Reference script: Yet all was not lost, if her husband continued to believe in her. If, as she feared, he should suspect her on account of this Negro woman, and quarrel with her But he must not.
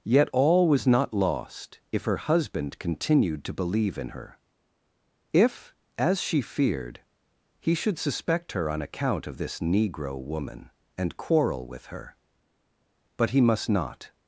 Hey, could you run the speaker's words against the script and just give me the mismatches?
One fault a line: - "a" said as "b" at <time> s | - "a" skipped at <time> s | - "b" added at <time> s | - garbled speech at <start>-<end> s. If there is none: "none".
none